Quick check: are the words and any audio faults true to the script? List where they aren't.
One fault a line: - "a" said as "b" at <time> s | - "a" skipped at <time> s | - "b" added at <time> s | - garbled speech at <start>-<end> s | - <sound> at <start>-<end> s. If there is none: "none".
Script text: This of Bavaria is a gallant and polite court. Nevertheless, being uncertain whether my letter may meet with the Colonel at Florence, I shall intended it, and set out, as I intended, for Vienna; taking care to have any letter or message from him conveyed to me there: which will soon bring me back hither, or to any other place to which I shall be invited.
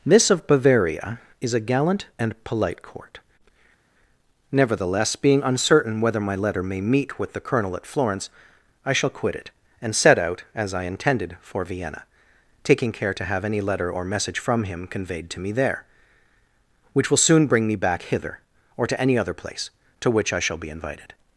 - "intended" said as "quit" at 9.1 s